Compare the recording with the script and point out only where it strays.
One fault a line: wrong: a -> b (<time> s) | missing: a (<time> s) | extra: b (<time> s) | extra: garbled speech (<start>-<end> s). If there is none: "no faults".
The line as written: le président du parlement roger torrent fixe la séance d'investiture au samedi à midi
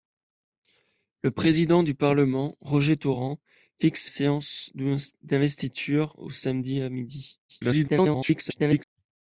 missing: la (4.1 s)
extra: garbled speech (7.5-8.8 s)